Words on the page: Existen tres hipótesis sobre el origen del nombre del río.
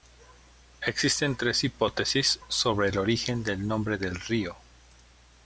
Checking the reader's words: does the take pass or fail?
pass